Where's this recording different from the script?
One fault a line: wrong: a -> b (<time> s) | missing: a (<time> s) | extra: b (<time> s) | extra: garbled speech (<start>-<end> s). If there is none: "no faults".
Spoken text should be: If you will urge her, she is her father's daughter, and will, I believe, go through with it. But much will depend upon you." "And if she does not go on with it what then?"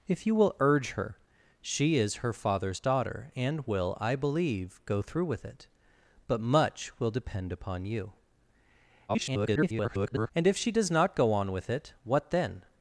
extra: garbled speech (9.1-10.3 s)